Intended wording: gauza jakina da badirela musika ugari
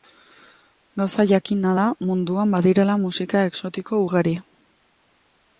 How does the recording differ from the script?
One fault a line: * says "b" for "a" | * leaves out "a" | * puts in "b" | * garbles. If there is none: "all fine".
* puts in "munduan"
* puts in "exotiko"